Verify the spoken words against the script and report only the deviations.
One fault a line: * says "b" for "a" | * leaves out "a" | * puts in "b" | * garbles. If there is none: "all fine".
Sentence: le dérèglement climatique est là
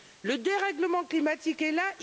all fine